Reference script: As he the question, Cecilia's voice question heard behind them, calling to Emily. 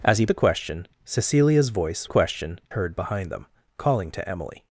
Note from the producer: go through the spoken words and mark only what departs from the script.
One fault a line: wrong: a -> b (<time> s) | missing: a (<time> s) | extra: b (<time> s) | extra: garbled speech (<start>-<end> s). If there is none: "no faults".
no faults